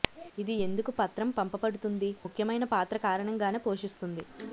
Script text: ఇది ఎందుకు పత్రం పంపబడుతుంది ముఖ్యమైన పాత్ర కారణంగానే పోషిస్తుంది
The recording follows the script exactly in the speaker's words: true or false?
true